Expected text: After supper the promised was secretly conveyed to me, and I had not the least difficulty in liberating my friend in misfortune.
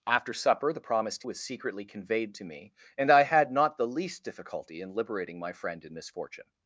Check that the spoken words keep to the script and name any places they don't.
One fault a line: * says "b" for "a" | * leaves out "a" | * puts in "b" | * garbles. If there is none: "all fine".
all fine